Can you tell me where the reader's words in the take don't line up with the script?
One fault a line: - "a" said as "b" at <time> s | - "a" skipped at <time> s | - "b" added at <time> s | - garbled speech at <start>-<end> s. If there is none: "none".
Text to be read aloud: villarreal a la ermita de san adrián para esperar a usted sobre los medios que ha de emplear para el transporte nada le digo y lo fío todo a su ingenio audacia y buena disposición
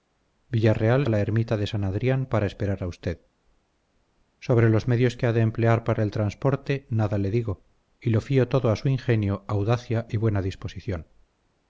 none